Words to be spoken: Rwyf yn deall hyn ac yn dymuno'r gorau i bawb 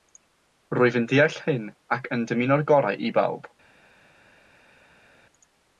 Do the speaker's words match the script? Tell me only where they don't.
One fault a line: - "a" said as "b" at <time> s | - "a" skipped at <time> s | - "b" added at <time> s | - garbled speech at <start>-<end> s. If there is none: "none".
none